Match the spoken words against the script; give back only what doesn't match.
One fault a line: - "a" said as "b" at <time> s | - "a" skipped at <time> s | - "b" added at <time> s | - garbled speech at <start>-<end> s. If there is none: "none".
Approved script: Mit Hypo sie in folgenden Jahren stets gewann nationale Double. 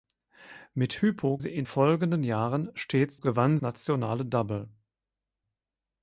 none